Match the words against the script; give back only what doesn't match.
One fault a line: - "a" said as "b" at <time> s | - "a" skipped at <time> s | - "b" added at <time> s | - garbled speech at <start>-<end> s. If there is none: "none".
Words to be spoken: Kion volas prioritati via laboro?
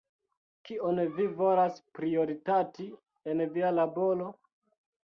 - "vi" added at 1.2 s
- "en" added at 3.4 s